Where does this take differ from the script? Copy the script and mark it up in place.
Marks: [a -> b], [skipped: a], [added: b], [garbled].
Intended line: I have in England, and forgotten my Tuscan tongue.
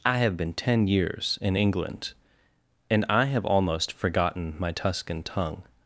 I have [added: been ten years] in England, and [added: I have almost] forgotten my Tuscan tongue.